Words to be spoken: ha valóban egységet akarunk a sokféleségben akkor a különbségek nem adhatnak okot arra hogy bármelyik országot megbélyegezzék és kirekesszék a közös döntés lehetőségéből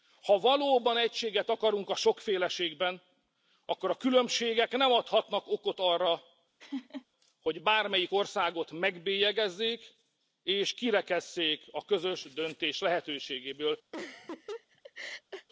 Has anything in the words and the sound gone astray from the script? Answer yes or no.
yes